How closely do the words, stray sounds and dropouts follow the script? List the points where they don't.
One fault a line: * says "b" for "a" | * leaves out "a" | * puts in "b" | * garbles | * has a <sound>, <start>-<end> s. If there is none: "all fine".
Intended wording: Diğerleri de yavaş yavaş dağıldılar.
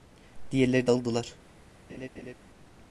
* leaves out "yavaş yavaş"
* has a laugh, 1.9-2.3 s